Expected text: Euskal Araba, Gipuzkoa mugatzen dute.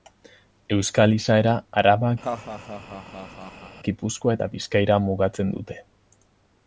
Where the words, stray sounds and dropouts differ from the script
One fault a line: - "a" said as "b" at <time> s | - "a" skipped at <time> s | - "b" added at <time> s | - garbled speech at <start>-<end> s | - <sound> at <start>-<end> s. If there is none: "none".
- "izaera" added at 1.2 s
- laugh at 2.2-3.8 s
- "eta Bizkaira" added at 4.4 s